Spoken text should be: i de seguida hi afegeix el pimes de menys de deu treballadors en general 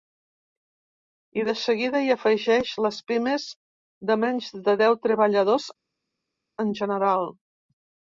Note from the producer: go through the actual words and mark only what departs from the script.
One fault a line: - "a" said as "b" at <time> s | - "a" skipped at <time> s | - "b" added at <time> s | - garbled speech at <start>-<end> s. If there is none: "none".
- "el" said as "les" at 2.8 s